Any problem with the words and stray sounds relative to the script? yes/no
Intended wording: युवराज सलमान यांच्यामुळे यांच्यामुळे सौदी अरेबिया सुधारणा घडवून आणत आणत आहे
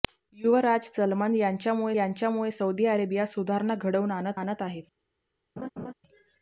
yes